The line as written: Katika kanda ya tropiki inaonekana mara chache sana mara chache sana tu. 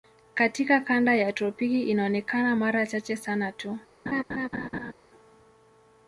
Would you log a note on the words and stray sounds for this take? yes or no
yes